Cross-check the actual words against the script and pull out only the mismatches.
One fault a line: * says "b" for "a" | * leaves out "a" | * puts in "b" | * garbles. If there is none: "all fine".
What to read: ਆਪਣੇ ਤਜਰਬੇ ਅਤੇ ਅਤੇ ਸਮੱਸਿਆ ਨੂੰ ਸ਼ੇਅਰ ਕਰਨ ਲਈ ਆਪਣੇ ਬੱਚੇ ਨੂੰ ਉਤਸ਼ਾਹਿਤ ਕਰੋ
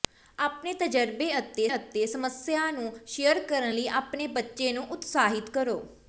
all fine